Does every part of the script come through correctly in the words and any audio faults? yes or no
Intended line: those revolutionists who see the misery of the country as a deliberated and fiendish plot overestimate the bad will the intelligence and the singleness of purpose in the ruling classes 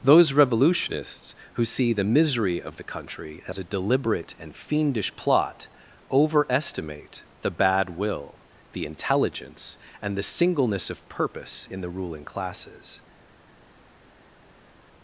no